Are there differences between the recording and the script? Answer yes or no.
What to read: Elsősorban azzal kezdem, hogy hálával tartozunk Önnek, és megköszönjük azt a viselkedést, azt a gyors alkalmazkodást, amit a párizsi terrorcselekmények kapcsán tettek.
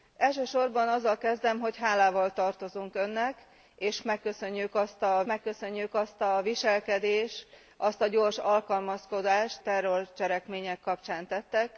yes